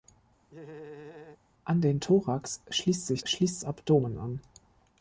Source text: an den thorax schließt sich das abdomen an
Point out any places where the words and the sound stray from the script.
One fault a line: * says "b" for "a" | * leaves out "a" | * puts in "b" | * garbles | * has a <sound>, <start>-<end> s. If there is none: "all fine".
* has a laugh, 0.5-1.4 s
* says "schließt" for "das"